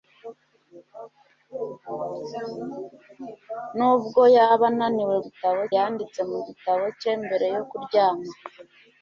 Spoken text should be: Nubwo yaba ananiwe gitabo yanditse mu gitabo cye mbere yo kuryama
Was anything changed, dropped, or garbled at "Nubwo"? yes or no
no